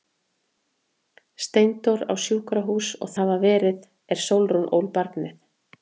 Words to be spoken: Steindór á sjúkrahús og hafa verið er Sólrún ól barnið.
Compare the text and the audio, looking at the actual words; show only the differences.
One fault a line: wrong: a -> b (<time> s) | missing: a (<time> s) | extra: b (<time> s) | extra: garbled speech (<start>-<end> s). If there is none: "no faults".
no faults